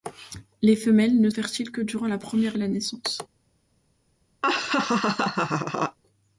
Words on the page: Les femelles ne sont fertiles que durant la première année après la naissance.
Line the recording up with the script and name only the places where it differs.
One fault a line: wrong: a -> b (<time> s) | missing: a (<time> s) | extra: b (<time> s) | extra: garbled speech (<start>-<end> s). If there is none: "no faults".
missing: sont (1.3 s)
missing: année après (2.6 s)